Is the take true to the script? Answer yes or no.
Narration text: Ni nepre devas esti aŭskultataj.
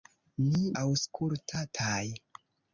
no